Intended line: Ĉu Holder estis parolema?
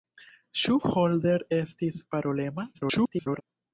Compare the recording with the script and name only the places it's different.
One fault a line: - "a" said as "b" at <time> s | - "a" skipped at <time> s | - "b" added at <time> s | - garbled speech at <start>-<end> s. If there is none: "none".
- garbled speech at 2.7-3.4 s